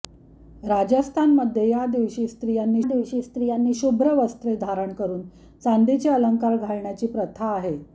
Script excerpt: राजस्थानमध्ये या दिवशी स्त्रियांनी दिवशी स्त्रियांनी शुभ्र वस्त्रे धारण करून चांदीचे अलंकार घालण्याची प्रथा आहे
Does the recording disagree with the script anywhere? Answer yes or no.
no